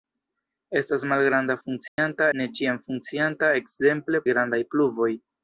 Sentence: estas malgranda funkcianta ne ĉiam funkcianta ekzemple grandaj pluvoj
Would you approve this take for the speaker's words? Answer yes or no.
yes